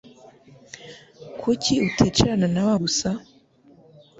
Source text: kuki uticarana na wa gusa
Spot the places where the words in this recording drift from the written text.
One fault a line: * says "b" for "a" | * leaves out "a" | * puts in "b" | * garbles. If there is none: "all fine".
all fine